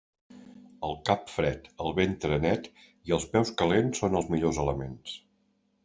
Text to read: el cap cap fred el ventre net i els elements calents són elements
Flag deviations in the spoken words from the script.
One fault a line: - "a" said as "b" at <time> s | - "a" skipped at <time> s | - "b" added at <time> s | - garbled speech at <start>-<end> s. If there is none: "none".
- "cap" skipped at 1.3 s
- "elements" said as "peus" at 3.4 s
- "els millors" added at 4.2 s